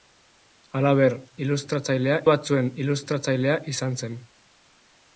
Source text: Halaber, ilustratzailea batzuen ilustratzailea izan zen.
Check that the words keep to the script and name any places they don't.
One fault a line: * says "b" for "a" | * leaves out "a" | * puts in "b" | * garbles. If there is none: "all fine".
all fine